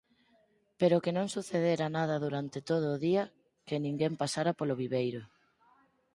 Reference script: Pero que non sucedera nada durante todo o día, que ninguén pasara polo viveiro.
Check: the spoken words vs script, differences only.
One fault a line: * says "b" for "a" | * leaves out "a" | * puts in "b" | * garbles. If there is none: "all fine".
all fine